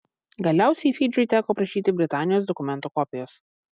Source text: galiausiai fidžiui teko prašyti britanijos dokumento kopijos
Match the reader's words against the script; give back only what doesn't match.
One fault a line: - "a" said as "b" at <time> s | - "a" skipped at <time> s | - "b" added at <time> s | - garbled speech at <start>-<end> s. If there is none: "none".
none